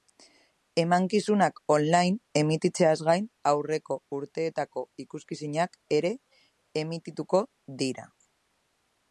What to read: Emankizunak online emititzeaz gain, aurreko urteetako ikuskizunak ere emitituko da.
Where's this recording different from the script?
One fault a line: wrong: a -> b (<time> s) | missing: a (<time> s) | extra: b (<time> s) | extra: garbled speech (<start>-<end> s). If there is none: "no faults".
wrong: da -> dira (7.9 s)